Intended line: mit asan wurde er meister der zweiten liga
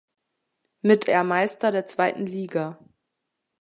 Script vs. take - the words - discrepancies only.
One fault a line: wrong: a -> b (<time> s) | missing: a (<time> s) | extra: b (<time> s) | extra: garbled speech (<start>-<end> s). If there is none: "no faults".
missing: asan wurde (1.1 s)